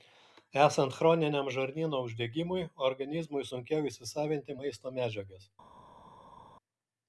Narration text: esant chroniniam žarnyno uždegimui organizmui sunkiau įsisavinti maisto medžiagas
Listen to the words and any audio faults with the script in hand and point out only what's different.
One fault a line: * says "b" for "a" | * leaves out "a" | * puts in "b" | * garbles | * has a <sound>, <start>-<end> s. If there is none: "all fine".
all fine